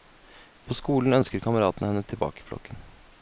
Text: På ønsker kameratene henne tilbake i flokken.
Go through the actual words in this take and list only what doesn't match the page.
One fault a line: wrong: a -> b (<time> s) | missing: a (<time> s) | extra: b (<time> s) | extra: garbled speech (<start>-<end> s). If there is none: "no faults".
extra: skolen (0.8 s)